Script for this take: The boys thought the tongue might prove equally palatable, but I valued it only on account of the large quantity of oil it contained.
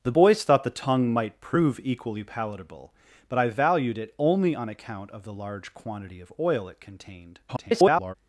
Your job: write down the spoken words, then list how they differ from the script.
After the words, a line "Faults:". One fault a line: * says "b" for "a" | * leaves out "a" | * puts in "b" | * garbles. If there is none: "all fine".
The boys thought the tongue might prove equally palatable, but I valued it only on account of the large quantity of oil it contained. [garbled]
Faults:
* garbles